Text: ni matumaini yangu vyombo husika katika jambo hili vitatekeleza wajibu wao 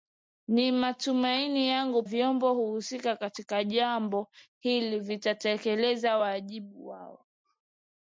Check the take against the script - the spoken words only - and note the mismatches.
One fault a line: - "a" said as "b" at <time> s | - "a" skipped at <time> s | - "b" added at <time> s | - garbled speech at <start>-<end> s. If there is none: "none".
none